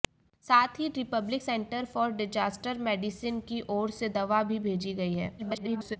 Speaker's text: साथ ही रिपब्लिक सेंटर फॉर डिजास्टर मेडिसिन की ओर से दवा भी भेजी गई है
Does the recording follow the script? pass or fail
fail